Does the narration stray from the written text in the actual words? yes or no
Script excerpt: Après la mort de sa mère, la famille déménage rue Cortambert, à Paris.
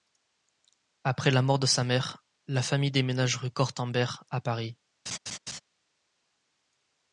no